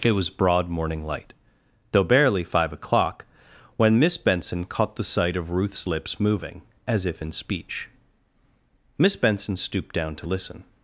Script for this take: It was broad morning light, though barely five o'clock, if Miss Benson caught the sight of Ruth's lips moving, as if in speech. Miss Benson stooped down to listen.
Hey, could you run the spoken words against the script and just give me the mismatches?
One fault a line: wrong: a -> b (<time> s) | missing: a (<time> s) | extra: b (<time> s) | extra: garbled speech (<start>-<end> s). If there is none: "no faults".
wrong: if -> when (3.8 s)